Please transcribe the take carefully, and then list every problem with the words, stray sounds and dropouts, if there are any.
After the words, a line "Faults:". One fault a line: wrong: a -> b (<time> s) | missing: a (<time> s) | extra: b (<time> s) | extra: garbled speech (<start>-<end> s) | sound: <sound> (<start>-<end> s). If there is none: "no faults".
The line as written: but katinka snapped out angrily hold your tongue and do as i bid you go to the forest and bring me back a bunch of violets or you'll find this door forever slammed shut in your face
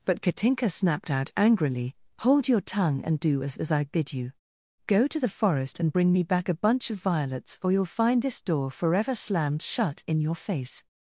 but katinka snapped out angrily hold your tongue and do as as i bid you go to the forest and bring me back a bunch of violets or you'll find this door forever slammed shut in your face
Faults:
extra: as (3.6 s)